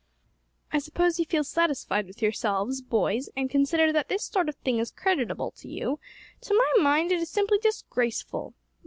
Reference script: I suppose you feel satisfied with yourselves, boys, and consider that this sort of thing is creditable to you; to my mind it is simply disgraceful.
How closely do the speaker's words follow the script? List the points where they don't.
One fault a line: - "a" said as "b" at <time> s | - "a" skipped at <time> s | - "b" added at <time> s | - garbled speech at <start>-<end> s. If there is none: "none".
none